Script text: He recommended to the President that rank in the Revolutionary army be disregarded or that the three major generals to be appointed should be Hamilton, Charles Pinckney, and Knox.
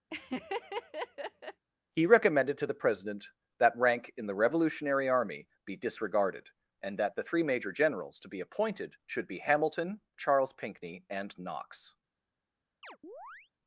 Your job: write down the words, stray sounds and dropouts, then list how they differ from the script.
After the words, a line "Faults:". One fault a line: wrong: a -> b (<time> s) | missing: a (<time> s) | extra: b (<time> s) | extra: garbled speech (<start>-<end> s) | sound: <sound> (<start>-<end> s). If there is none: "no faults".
He recommended to the President that rank in the Revolutionary army be disregarded and that the three major generals to be appointed should be Hamilton, Charles Pinckney, and Knox.
Faults:
sound: laugh (0.1-1.6 s)
wrong: or -> and (6.8 s)
sound: chirp (12.8-13.5 s)